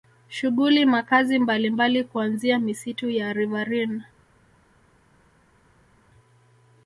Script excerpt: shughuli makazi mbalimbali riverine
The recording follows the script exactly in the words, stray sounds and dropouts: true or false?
false